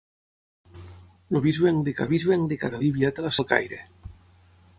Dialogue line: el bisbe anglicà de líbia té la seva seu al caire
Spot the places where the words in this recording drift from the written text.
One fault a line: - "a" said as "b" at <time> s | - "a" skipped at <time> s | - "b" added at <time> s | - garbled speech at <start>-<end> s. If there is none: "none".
- "bisbe anglicà" added at 2.1 s
- "seva seu" skipped at 3.3 s